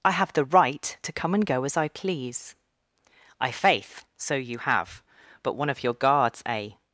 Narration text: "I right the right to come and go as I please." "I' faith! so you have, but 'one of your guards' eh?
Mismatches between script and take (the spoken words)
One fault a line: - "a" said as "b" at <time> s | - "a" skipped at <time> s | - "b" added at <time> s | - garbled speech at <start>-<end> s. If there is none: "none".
- "right" said as "have" at 0.1 s